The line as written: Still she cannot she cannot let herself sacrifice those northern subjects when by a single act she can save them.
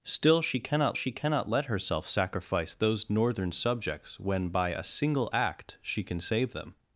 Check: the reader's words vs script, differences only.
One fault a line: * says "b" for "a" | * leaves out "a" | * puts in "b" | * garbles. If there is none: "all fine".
all fine